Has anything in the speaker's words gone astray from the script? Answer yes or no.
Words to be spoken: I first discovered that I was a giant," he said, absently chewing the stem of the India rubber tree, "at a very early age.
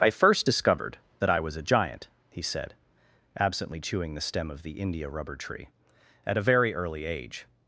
no